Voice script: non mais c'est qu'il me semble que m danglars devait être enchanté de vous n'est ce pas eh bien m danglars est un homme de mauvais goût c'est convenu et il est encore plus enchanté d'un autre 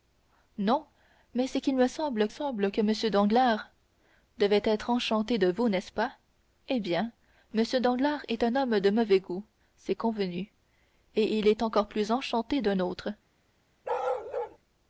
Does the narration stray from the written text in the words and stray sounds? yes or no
yes